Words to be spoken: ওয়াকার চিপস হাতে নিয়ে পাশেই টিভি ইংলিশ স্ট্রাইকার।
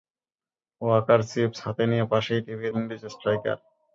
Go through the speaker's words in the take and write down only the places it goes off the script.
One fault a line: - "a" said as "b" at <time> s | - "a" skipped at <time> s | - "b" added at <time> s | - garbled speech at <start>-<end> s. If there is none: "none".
none